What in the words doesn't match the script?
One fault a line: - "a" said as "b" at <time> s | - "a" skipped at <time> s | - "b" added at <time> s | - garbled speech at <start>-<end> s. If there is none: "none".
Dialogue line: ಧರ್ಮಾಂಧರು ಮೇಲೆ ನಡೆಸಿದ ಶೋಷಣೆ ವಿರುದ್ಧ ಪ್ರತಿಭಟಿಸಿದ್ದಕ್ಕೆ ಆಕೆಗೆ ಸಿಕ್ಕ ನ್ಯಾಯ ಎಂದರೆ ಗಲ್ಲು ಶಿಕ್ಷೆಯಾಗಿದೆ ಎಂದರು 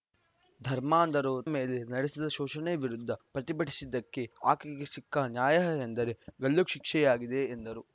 none